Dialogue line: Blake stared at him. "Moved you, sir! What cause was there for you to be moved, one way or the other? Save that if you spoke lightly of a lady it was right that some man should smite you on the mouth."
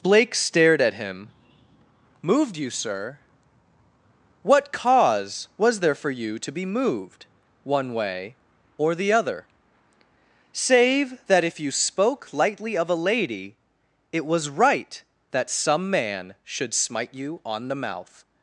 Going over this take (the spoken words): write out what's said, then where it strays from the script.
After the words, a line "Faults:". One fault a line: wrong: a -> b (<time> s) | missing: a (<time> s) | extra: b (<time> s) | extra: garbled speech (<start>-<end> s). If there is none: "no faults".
Blake stared at him. "Moved you, sir! What cause was there for you to be moved, one way or the other? Save that if you spoke lightly of a lady it was right that some man should smite you on the mouth."
Faults:
no faults